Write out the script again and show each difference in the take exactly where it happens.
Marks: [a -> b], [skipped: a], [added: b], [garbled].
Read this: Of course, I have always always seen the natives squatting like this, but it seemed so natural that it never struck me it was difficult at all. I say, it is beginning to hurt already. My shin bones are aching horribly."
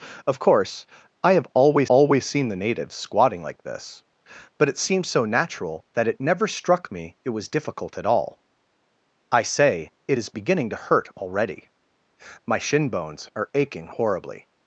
Of course, I have always always seen the natives squatting like this, but it seemed so natural that it never struck me it was difficult at all. I say, it is beginning to hurt already. My shin bones are aching horribly."